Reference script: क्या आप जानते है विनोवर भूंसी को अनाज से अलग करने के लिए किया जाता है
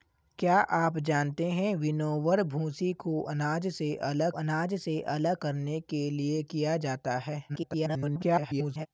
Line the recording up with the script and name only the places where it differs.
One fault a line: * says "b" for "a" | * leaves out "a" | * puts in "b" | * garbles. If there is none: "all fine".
* puts in "अनाज से अलग"
* garbles